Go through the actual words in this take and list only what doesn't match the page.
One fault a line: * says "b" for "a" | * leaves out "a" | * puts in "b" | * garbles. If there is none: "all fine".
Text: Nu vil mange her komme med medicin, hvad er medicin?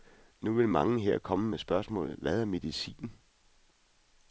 * says "spørgsmålet" for "medicin"